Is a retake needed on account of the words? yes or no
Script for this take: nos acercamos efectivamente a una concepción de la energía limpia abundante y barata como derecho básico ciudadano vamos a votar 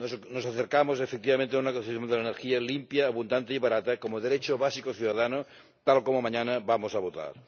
yes